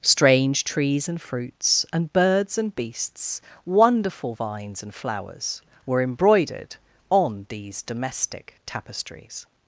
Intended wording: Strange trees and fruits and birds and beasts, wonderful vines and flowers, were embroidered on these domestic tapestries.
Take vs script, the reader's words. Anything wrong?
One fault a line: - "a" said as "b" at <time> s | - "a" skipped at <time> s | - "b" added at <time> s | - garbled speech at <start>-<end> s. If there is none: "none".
none